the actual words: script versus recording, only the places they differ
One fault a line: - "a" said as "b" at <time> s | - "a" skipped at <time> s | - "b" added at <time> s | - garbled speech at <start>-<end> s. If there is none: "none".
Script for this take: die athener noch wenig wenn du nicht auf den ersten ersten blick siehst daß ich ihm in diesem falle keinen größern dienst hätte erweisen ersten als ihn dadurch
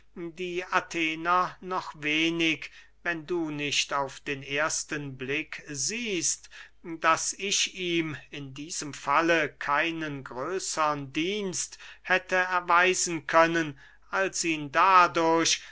- "ersten" skipped at 5.2 s
- "ersten" said as "können" at 13.3 s